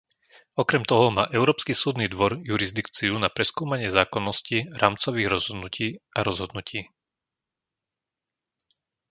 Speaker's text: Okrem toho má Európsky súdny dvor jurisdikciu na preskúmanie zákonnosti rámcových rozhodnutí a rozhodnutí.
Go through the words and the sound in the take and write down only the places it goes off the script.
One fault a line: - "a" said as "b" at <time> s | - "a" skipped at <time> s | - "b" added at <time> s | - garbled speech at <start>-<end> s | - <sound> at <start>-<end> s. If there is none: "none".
none